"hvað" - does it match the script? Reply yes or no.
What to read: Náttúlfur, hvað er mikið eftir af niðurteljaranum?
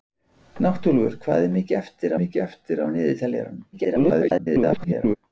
yes